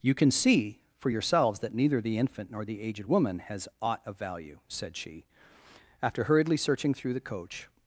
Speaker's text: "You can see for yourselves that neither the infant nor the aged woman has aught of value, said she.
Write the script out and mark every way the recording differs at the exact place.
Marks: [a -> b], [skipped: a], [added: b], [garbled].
"You can see for yourselves that neither the infant nor the aged woman has aught of value, said she. [added: After hurriedly searching through the coach]